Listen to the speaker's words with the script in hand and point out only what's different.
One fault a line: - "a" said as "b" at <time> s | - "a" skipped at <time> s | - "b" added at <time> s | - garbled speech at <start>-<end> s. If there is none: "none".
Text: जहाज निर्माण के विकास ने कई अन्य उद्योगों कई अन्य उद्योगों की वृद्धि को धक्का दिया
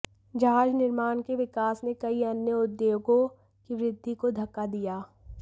- "कई अन्य उद्योगों" skipped at 3.3 s